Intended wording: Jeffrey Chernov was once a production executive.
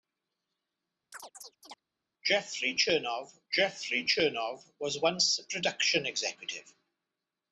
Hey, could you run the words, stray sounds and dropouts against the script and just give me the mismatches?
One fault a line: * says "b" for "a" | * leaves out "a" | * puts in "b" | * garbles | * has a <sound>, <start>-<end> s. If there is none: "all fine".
* has a chirp, 1.1-1.8 s
* puts in "jeffrey Chernov"